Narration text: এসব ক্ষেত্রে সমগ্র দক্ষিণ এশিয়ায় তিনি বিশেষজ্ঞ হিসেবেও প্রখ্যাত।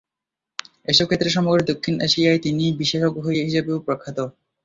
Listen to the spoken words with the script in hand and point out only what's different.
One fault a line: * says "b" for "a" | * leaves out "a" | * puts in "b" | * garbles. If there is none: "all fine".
all fine